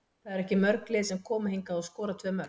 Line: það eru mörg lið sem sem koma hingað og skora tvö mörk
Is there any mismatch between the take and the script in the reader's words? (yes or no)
yes